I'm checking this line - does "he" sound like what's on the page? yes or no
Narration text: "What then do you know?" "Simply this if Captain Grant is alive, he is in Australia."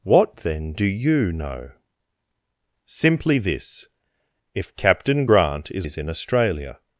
no